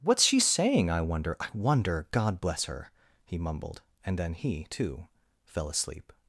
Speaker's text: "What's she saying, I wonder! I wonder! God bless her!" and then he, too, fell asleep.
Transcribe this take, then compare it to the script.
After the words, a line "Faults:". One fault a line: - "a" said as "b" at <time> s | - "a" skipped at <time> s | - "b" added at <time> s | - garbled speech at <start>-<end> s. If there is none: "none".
"What's she saying, I wonder! I wonder! God bless her!" he mumbled, and then he, too, fell asleep.
Faults:
- "he mumbled" added at 3.3 s